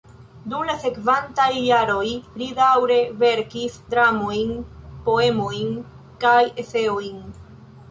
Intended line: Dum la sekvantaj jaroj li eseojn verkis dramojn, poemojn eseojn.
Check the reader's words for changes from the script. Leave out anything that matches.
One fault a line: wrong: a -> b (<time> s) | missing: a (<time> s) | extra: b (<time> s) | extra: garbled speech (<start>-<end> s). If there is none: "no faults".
wrong: eseojn -> daŭre (2.6 s)
extra: kaj (6.3 s)